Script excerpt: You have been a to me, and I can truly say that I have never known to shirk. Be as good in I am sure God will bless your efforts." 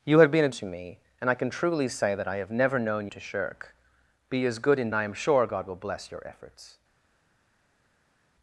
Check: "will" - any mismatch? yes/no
no